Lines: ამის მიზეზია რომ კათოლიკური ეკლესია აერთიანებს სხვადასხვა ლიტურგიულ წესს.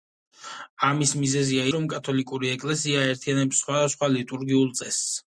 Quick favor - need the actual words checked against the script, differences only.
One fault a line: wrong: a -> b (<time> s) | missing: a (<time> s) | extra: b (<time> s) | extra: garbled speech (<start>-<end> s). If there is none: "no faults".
no faults